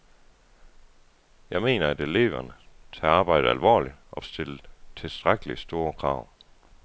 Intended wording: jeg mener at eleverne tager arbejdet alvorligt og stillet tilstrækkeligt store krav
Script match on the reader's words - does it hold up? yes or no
yes